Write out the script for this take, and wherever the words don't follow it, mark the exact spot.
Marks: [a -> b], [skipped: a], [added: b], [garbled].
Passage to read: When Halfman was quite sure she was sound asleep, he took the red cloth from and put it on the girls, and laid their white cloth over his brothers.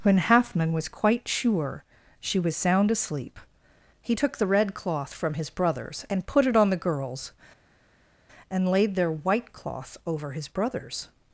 When Halfman was quite sure she was sound asleep, he took the red cloth from [added: his brothers] and put it on the girls, and laid their white cloth over his brothers.